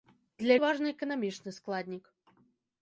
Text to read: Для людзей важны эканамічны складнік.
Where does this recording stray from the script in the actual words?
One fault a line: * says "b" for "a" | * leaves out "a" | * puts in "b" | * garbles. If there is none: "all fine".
* leaves out "людзей"